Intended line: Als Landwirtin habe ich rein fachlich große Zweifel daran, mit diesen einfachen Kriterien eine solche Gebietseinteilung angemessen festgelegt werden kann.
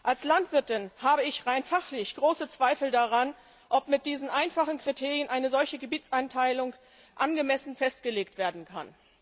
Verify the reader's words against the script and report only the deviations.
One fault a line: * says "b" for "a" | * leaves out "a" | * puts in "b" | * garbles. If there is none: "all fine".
* puts in "ob"